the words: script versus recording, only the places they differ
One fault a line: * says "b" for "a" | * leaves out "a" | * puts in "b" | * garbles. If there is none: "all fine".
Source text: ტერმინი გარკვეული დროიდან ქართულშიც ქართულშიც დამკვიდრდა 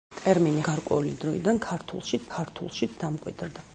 all fine